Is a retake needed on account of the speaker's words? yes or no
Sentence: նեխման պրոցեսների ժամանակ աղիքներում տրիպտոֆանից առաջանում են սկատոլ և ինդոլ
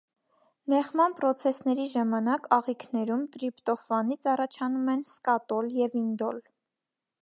no